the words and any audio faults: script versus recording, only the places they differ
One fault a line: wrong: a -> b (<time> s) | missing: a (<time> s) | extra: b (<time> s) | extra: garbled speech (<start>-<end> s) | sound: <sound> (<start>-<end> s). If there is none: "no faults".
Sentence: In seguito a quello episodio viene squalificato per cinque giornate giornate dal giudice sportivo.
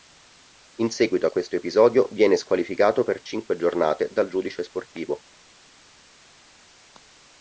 wrong: quello -> questo (1.3 s)
missing: giornate (4.1 s)